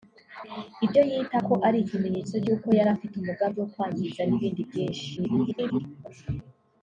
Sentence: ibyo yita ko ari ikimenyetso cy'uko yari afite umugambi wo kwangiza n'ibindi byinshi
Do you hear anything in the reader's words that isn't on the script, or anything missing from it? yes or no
yes